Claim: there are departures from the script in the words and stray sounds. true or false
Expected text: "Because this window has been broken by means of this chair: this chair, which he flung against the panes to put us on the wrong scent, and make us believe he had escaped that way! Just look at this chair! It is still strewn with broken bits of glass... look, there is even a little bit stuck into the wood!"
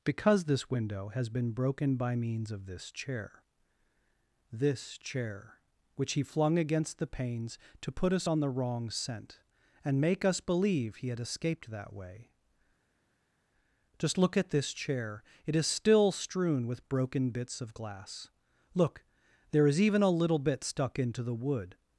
false